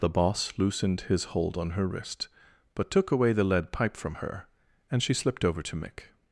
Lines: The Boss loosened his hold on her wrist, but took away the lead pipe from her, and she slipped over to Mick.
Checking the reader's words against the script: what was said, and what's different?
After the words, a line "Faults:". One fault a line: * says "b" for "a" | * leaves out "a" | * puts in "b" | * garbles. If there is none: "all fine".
The Boss loosened his hold on her wrist, but took away the lead pipe from her, and she slipped over to Mick.
Faults:
all fine